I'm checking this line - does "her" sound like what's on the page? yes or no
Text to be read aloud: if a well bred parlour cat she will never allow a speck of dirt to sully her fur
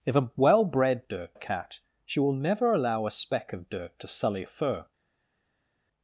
no